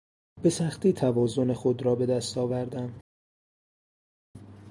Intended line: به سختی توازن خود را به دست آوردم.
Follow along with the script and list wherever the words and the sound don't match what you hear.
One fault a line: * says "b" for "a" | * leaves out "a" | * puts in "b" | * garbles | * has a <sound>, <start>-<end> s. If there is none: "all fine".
all fine